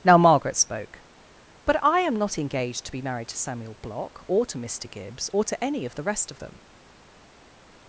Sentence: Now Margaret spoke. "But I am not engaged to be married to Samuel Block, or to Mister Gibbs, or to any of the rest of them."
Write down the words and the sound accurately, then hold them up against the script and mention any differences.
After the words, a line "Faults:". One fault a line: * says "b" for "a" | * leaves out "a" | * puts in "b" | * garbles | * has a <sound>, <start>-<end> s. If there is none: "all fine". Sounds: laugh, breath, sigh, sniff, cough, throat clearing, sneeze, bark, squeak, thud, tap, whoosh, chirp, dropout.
Now Margaret spoke. "But I am not engaged to be married to Samuel Block, or to Mister Gibbs, or to any of the rest of them."
Faults:
all fine